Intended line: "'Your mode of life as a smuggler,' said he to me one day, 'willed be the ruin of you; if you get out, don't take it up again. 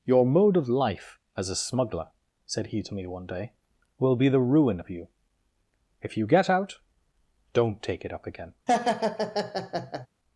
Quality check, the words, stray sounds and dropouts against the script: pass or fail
fail